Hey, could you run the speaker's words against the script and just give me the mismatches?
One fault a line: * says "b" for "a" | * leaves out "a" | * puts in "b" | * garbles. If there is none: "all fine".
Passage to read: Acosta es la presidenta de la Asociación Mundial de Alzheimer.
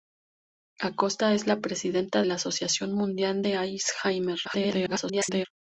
* leaves out "de"
* garbles